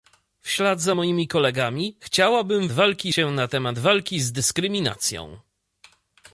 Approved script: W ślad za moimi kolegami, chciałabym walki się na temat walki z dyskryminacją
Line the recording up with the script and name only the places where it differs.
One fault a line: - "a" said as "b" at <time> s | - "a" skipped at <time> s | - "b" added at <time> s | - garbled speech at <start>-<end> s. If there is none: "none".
none